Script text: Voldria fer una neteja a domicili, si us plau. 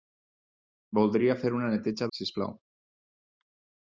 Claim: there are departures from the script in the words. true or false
true